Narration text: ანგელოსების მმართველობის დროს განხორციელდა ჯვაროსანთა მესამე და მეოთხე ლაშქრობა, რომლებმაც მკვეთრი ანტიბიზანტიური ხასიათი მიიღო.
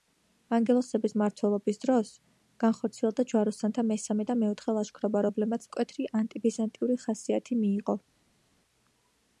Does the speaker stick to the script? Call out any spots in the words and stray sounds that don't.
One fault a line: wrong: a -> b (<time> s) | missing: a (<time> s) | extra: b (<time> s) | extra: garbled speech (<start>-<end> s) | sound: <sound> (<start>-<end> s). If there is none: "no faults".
no faults